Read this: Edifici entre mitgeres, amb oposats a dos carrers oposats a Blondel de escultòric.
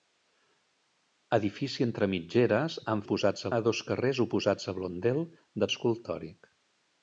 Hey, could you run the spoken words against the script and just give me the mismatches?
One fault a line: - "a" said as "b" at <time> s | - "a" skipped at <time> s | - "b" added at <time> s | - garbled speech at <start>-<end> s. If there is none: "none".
none